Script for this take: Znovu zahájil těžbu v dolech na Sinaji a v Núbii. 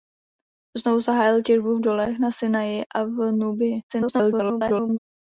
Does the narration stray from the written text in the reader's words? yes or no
yes